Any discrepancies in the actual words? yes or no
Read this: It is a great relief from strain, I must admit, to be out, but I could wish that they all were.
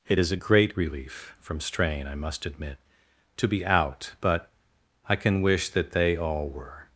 yes